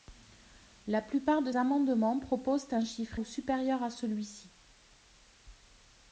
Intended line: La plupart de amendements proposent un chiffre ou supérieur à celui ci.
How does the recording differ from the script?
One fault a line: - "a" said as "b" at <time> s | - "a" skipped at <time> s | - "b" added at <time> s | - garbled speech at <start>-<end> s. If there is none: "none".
none